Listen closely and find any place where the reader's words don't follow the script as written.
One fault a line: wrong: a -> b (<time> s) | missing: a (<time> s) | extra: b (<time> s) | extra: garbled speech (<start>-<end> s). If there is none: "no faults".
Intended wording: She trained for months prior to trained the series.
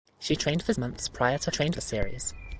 no faults